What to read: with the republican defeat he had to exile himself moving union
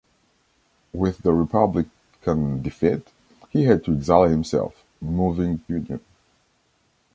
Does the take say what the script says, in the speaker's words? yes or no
yes